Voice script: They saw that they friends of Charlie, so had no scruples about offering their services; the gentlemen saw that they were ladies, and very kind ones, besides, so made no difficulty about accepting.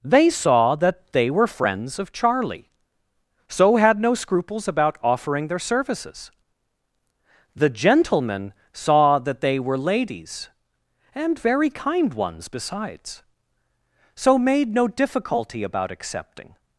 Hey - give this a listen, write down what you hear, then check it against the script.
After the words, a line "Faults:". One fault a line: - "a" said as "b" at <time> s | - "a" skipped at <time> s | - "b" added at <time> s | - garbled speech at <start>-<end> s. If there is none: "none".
They saw that they were friends of Charlie, so had no scruples about offering their services; the gentlemen saw that they were ladies, and very kind ones, besides, so made no difficulty about accepting.
Faults:
- "were" added at 1.3 s